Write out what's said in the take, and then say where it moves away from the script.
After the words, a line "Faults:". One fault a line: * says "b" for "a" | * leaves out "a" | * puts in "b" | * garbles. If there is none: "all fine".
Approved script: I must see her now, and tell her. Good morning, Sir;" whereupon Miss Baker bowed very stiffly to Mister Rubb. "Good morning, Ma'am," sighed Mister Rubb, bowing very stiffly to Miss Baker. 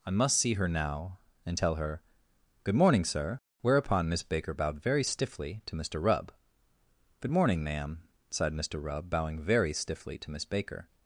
I must see her now, and tell her. Good morning, Sir;" whereupon Miss Baker bowed very stiffly to Mister Rubb. "Good morning, Ma'am," sighed Mister Rubb, bowing very stiffly to Miss Baker.
Faults:
all fine